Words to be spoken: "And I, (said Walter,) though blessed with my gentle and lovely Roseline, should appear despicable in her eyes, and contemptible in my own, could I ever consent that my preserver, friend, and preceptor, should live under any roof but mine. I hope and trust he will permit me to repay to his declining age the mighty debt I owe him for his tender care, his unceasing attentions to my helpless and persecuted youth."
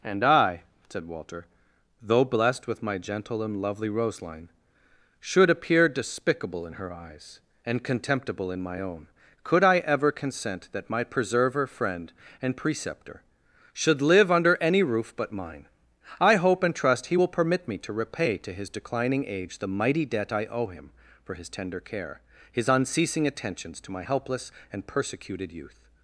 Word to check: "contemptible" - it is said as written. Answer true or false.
true